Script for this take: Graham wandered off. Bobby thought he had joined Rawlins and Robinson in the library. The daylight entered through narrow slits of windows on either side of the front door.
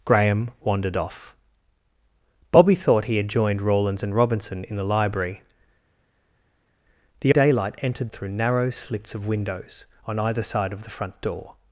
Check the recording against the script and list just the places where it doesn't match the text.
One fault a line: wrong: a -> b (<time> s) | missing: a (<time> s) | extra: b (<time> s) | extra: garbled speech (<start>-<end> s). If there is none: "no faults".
no faults